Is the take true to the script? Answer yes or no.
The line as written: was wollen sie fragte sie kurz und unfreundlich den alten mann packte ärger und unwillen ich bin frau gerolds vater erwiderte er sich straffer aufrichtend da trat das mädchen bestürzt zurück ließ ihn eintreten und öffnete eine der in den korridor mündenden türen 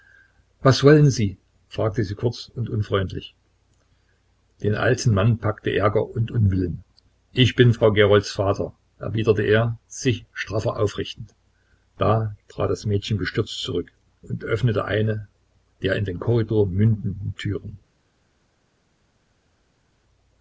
no